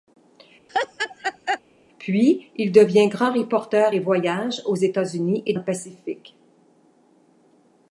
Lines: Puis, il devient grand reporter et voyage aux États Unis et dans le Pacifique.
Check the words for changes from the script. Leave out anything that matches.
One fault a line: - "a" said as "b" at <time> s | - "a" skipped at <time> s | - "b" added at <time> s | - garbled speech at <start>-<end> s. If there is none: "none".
- "dans" skipped at 5.5 s